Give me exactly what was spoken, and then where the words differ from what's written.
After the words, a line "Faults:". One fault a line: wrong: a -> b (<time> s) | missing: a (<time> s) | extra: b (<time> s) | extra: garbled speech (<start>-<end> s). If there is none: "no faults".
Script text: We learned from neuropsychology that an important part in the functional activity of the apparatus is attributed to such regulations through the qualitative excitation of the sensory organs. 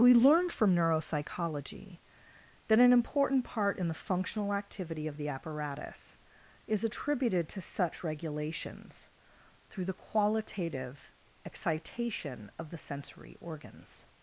We learned from neuropsychology that an important part in the functional activity of the apparatus is attributed to such regulations through the qualitative excitation of the sensory organs.
Faults:
no faults